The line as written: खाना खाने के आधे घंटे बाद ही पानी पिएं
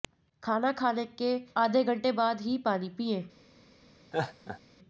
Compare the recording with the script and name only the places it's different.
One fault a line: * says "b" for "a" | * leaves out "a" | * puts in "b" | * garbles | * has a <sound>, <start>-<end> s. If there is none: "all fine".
* has a laugh, 4.1-4.6 s